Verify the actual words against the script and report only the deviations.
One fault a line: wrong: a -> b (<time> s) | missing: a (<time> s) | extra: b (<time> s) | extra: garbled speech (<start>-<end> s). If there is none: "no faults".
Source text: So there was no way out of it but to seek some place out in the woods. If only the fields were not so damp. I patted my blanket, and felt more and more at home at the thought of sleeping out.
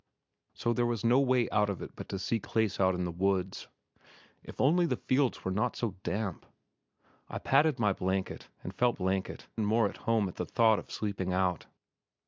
missing: some (2.5 s)
wrong: more -> blanket (8.9 s)